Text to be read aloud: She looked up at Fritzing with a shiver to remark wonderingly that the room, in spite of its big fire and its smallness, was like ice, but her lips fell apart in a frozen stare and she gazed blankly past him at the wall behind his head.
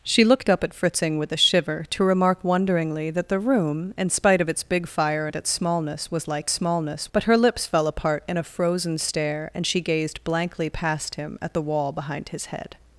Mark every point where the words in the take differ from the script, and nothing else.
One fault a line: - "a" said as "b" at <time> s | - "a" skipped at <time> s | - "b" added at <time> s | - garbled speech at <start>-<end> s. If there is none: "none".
- "ice" said as "smallness" at 6.5 s